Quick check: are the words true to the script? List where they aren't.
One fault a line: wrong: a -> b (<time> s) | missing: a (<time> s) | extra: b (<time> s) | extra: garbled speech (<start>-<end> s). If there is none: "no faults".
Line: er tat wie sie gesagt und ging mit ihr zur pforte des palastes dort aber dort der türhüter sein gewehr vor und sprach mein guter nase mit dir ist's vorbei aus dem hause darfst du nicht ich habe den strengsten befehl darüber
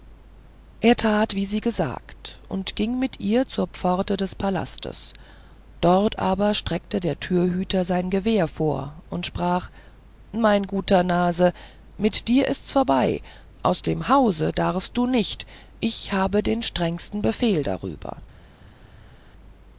wrong: dort -> streckte (6.5 s)